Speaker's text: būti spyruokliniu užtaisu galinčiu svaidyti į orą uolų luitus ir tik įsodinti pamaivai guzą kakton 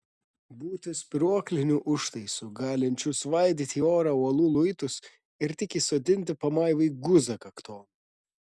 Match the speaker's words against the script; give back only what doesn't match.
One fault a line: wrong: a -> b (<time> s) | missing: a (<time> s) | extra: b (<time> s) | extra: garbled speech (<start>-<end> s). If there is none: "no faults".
no faults